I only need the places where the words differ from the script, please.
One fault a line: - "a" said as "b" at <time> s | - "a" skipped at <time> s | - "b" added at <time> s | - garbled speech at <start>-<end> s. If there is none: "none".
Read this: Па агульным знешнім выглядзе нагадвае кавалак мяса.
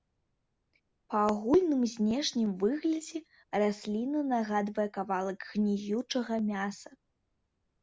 - "расліна" added at 3.6 s
- "гніючага" added at 5.5 s